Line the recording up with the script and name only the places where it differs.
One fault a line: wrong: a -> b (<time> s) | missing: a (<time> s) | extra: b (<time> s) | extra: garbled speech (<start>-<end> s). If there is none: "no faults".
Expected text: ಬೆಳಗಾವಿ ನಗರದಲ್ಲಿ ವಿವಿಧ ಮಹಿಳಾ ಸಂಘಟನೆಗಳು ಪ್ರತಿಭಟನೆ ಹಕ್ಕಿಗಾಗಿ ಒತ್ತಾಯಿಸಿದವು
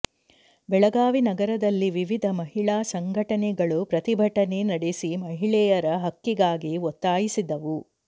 extra: ನಡೆಸಿ ಮಹಿಳೆಯರ (4.7 s)